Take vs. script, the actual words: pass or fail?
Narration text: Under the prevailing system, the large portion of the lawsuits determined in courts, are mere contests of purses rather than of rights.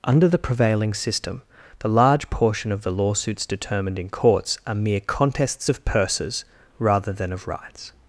pass